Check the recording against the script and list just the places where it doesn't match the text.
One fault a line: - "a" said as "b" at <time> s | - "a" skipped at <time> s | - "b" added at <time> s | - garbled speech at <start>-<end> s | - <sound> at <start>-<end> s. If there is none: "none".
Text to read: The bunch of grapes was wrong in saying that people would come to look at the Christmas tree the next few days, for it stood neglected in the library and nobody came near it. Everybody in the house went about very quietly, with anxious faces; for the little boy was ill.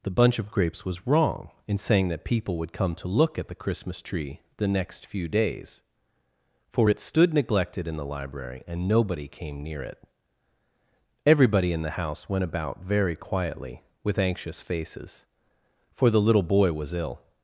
none